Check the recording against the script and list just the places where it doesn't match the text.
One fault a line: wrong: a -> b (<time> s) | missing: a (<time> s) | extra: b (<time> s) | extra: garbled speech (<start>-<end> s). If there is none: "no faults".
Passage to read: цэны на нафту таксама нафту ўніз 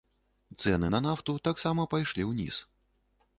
wrong: нафту -> пайшлі (2.0 s)